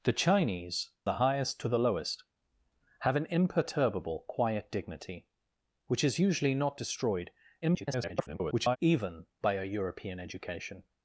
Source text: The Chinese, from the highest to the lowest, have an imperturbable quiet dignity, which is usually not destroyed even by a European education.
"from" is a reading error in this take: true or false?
true